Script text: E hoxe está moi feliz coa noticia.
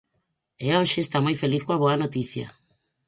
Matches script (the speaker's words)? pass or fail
fail